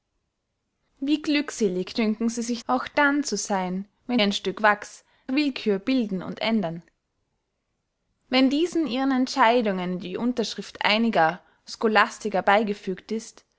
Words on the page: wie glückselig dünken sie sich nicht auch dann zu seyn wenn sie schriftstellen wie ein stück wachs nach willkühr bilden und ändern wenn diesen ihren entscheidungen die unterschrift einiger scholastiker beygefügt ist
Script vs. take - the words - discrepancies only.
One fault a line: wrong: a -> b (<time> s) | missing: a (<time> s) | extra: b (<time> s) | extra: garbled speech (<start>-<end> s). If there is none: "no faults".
missing: nicht (2.6 s)
missing: sie schriftstellen wie (4.2 s)
missing: nach (5.0 s)